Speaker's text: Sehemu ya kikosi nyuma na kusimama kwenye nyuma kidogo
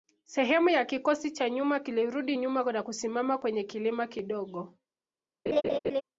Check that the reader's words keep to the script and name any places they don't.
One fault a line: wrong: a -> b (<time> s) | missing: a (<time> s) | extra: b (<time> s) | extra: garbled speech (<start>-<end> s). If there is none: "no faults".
extra: cha (1.3 s)
extra: kilirudi nyuma (1.8 s)
wrong: nyuma -> kilima (3.6 s)